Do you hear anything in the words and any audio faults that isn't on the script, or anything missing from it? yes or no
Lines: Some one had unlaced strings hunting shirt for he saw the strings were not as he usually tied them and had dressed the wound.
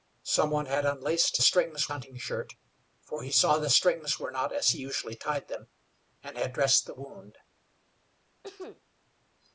yes